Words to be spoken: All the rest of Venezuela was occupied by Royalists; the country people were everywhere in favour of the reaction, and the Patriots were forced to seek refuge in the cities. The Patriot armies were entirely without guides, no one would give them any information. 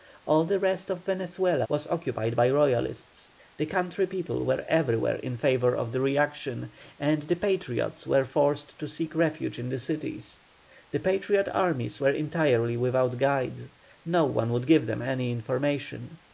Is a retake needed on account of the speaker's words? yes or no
no